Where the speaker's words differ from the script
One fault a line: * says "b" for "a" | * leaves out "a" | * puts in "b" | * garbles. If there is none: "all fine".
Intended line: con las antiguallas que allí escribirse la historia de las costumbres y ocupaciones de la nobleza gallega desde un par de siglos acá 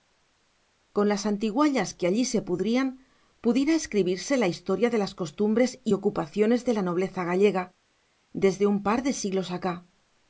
* puts in "se pudrían pudiera"